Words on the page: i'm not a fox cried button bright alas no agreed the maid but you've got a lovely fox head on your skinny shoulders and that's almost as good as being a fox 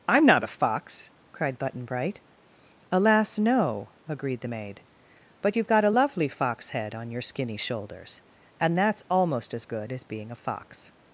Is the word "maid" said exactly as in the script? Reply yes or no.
yes